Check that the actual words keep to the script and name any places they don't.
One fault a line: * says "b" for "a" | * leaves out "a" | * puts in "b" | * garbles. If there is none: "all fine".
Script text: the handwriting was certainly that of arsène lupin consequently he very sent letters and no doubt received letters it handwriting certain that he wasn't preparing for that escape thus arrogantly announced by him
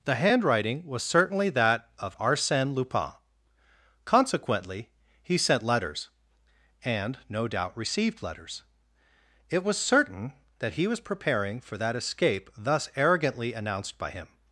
* leaves out "very"
* says "was" for "handwriting"
* says "was" for "wasn't"